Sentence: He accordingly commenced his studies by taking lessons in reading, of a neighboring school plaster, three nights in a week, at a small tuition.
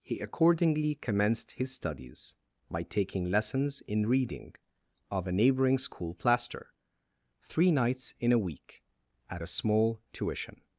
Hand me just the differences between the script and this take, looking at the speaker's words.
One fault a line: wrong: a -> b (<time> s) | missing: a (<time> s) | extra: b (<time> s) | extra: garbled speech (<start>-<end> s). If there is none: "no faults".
no faults